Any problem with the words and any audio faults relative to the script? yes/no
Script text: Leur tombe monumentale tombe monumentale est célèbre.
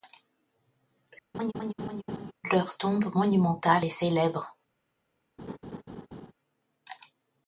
yes